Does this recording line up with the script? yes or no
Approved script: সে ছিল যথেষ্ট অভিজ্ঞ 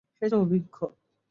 no